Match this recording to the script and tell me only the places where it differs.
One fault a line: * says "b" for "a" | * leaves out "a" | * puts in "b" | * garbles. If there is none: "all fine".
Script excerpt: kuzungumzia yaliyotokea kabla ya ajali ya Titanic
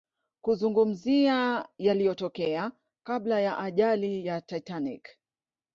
all fine